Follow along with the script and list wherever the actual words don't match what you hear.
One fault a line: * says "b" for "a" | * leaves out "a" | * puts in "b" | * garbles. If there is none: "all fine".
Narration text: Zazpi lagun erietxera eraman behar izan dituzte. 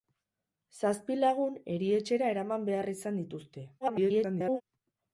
* garbles